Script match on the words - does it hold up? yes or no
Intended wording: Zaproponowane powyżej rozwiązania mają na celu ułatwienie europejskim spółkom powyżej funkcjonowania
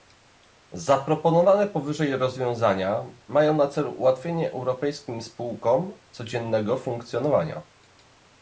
no